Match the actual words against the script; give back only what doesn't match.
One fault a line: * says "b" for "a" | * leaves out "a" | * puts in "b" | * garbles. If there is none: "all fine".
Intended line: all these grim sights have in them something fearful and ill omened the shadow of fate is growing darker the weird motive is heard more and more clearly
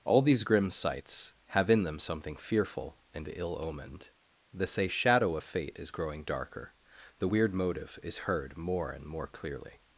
* puts in "say"